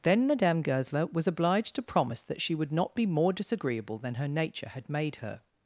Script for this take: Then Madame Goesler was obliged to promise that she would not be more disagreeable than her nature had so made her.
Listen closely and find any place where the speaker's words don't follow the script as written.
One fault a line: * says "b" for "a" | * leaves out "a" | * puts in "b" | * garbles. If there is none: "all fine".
* leaves out "so"